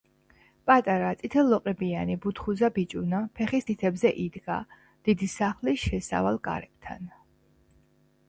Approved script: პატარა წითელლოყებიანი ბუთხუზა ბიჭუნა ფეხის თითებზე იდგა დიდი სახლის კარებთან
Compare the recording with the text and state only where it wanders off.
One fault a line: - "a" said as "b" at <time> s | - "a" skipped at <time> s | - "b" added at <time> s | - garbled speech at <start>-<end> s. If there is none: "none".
- "შესავალ" added at 5.9 s